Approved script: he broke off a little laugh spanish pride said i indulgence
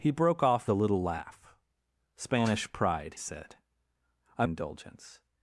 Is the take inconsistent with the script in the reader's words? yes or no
no